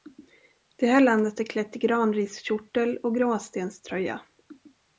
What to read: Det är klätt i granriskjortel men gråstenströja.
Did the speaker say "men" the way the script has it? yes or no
no